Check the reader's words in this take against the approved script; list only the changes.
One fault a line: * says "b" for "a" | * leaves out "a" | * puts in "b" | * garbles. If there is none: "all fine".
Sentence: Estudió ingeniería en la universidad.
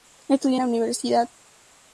* leaves out "ingeniería"